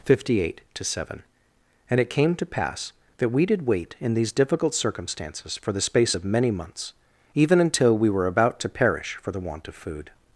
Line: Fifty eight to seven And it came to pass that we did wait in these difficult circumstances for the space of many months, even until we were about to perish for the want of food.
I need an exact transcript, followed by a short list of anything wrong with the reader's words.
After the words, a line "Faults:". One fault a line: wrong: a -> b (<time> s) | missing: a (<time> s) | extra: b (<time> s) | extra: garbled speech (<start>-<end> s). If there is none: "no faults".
Fifty eight to seven And it came to pass that we did wait in these difficult circumstances for the space of many months, even until we were about to perish for the want of food.
Faults:
no faults